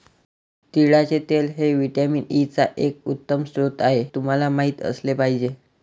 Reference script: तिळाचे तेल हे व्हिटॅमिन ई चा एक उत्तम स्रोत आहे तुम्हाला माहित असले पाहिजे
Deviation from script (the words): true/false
false